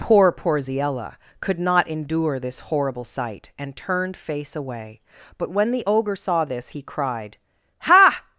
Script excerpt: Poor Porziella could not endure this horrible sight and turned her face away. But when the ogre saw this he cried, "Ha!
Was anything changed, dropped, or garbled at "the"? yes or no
no